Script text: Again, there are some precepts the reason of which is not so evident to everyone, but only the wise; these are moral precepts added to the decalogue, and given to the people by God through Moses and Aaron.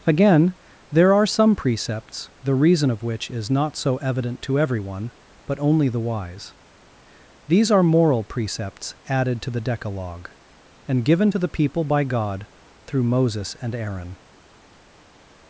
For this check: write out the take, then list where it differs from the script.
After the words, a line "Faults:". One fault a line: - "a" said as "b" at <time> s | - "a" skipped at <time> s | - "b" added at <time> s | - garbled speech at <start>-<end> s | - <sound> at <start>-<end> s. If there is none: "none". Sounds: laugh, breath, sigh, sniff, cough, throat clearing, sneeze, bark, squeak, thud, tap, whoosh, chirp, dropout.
Again, there are some precepts the reason of which is not so evident to everyone, but only the wise; these are moral precepts added to the decalogue, and given to the people by God through Moses and Aaron.
Faults:
none